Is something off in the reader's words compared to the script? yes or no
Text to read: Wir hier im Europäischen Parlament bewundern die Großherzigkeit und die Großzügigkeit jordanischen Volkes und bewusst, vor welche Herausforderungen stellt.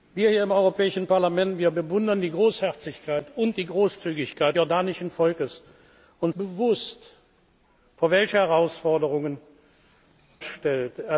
no